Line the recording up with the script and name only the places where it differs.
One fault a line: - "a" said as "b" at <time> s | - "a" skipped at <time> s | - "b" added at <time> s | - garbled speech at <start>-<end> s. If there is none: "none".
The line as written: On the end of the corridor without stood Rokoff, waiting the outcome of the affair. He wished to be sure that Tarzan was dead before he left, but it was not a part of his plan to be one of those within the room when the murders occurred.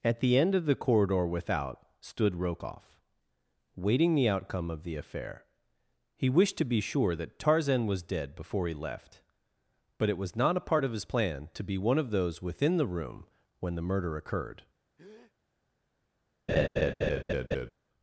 - "On" said as "At" at 0.0 s
- "murders" said as "murder" at 13.8 s